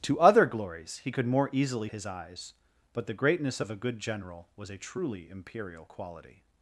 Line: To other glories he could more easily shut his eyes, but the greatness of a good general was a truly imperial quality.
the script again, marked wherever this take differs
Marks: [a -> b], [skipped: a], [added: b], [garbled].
To other glories he could more easily [skipped: shut] his eyes, but the greatness of a good general was a truly imperial quality.